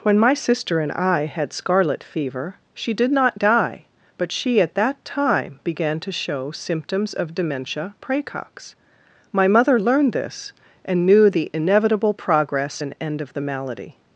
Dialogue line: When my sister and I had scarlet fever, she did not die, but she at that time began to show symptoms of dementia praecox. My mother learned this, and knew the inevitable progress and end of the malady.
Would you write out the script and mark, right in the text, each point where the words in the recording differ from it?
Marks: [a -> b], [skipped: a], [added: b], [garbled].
When my sister and I had scarlet fever, she did not die, but she at that time began to show symptoms of dementia praecox. My mother learned this, and knew the inevitable progress and end of the malady.